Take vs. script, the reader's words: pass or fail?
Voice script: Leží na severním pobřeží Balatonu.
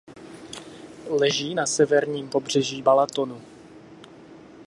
pass